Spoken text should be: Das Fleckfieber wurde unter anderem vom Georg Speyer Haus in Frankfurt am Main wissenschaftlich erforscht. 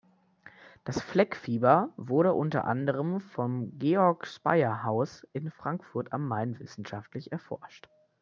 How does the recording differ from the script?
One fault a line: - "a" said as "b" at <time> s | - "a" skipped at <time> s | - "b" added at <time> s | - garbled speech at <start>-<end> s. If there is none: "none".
none